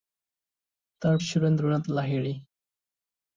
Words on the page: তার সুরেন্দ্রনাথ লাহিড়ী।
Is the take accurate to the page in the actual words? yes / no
yes